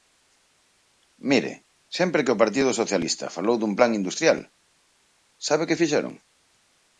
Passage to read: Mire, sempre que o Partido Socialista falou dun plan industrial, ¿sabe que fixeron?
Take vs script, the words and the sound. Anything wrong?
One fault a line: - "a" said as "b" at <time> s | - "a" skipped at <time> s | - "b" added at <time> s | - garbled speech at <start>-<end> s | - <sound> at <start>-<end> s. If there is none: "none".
none